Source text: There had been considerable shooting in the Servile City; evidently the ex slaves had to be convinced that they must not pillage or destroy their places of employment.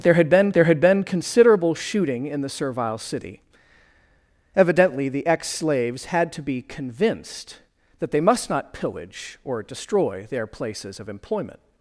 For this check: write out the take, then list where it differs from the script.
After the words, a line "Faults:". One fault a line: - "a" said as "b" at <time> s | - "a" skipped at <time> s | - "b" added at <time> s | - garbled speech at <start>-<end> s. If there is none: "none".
There had been there had been considerable shooting in the Servile City; evidently the ex slaves had to be convinced that they must not pillage or destroy their places of employment.
Faults:
- "there had been" added at 0.5 s